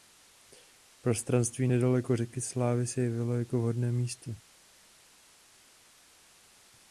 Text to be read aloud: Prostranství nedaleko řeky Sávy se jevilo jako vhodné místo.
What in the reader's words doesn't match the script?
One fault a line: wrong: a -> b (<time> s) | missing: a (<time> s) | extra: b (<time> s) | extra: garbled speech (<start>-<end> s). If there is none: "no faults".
no faults